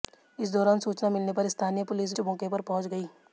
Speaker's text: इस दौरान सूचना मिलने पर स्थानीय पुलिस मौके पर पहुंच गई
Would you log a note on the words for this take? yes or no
no